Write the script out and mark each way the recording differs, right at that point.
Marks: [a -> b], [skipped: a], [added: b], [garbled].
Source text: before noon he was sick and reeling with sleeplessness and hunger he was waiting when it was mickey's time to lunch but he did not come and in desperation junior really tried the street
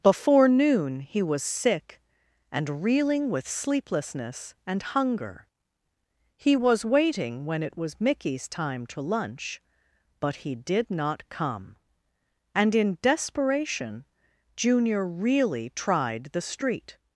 before noon he was sick and reeling with sleeplessness and hunger he was waiting when it was mickey's time to lunch but he did not come and in desperation junior really tried the street